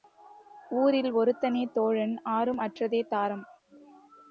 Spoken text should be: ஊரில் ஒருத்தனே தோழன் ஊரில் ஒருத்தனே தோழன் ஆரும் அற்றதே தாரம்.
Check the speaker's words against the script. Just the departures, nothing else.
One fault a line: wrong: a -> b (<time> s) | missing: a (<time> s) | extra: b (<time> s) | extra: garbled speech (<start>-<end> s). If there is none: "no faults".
missing: ஊரில் ஒருத்தனே தோழன் (2.2 s)